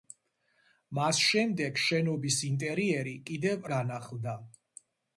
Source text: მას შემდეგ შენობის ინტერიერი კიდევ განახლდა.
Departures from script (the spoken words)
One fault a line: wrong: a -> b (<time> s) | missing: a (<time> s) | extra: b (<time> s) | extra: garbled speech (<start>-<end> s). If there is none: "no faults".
no faults